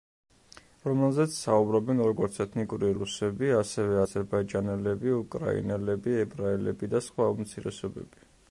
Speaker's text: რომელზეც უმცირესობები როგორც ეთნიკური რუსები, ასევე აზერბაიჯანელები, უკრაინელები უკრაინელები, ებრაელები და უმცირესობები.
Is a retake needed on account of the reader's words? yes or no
yes